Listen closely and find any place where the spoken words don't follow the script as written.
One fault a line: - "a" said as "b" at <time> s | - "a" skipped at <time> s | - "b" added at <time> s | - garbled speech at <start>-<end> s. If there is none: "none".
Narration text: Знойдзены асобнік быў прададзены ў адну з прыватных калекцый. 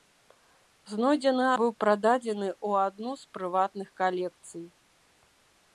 - "асобнік" skipped at 1.4 s